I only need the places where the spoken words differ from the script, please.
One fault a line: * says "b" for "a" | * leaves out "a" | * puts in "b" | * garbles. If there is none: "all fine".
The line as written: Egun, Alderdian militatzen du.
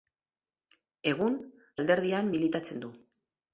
all fine